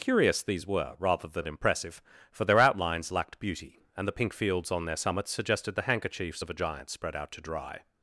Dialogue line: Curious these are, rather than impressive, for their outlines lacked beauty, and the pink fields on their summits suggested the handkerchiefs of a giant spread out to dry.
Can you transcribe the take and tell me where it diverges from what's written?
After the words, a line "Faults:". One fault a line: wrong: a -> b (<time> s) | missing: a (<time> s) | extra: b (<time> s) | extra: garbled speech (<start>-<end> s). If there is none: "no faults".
Curious these were, rather than impressive, for their outlines lacked beauty, and the pink fields on their summits suggested the handkerchiefs of a giant spread out to dry.
Faults:
wrong: are -> were (0.7 s)